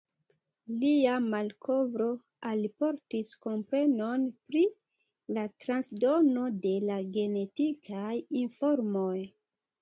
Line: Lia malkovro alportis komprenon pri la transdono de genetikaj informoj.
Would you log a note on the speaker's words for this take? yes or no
yes